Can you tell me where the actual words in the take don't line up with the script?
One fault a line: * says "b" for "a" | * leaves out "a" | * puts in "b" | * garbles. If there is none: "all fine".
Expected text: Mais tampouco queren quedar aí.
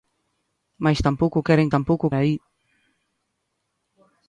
* says "tampouco" for "quedar"